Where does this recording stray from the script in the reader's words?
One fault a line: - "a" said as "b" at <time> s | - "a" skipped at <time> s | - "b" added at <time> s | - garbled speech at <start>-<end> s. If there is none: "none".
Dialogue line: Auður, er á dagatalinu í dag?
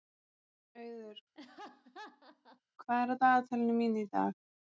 - "hvað" added at 2.8 s
- "mínu" added at 3.8 s